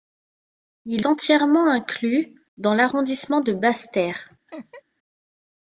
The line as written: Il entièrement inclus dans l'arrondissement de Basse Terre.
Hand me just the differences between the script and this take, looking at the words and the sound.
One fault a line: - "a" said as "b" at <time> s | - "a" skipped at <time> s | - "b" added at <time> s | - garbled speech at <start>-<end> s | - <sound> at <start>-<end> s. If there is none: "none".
- laugh at 4.5-4.8 s